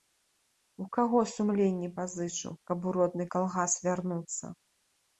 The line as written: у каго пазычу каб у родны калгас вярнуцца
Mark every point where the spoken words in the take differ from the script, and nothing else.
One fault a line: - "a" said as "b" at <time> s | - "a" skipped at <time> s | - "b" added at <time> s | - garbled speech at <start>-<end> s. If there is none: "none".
- "сумленне" added at 1.3 s